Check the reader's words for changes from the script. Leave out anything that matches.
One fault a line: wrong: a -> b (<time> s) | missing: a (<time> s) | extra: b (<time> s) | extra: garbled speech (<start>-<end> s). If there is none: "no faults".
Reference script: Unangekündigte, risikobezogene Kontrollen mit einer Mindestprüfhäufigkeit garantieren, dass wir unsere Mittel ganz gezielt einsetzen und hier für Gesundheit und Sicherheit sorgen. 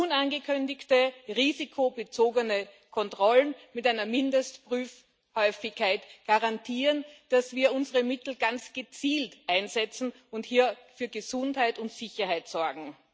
no faults